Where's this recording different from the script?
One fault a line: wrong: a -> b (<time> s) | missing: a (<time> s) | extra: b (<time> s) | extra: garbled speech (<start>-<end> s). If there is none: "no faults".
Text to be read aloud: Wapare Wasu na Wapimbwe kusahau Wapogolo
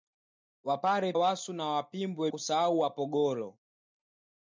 no faults